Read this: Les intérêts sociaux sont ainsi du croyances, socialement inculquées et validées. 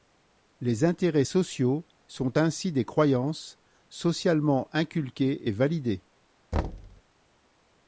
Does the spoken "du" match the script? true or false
false